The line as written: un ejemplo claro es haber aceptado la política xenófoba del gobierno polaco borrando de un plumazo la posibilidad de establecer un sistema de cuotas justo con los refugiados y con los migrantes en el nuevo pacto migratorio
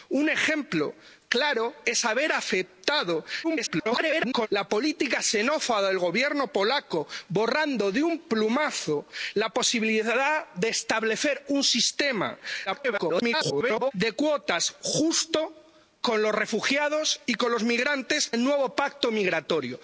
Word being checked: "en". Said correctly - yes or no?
no